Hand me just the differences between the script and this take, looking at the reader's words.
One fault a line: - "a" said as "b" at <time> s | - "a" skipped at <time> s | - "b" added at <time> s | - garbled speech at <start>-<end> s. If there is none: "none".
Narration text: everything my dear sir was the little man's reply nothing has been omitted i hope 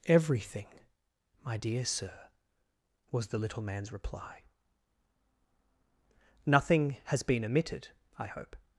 none